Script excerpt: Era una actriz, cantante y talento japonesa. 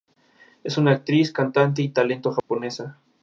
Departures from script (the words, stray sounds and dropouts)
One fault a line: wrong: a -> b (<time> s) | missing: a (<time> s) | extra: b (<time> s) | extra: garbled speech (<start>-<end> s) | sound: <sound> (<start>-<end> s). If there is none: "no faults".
wrong: Era -> Es (0.6 s)
sound: dropout (2.4-2.5 s)